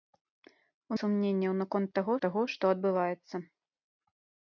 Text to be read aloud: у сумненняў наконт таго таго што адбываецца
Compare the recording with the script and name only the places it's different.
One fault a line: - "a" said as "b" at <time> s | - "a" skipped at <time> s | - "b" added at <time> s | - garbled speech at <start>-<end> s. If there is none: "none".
none